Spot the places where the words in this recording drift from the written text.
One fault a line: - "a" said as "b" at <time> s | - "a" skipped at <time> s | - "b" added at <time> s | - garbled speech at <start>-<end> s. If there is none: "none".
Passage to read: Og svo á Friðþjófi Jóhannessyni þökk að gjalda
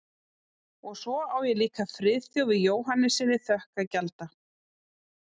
- "ég líka" added at 1.5 s